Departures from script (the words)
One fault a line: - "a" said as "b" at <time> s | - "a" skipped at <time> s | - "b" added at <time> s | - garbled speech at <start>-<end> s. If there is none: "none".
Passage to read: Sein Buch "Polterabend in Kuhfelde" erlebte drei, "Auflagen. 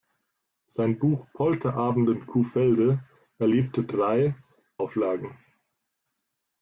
none